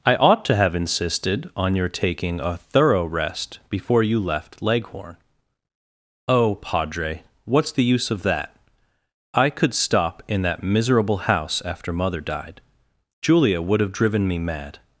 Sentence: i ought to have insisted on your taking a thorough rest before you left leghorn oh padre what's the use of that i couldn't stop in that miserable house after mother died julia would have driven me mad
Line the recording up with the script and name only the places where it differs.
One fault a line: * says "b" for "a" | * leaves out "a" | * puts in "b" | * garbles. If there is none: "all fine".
* says "could" for "couldn't"